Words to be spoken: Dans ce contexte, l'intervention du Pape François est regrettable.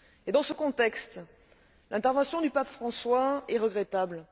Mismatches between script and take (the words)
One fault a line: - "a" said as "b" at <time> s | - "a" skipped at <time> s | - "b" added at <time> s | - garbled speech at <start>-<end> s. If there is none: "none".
none